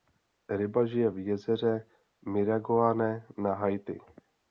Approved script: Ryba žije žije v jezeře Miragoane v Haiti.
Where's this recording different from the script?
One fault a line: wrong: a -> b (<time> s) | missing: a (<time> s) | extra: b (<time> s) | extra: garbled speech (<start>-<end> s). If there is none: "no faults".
missing: žije (1.1 s)
wrong: v -> na (3.4 s)